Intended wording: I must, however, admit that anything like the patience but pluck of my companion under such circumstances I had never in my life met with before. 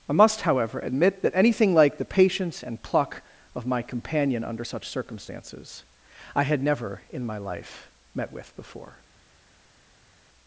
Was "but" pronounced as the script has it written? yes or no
no